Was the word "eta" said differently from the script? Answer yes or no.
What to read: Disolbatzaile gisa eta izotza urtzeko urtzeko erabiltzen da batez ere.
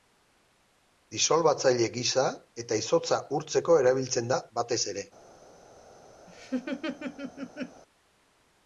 no